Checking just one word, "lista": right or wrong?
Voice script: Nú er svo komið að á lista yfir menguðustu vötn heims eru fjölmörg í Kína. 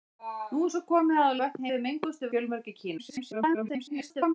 wrong